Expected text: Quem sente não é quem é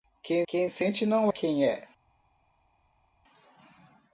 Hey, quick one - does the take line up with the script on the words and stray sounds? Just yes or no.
no